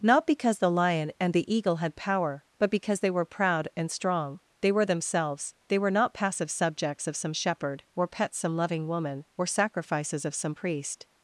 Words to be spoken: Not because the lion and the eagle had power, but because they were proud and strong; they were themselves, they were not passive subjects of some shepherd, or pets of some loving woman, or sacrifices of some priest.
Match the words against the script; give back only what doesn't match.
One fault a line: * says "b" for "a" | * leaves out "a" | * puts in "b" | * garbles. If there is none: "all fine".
* leaves out "of"